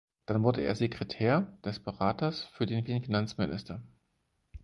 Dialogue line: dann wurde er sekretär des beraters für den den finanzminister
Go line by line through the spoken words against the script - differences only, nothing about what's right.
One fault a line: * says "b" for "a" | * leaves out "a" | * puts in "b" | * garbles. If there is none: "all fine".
all fine